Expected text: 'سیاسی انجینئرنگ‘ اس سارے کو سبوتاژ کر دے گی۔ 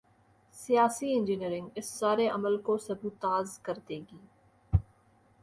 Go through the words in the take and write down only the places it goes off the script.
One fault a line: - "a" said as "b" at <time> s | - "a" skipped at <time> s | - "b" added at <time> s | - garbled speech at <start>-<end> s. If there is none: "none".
- "عمل" added at 2.3 s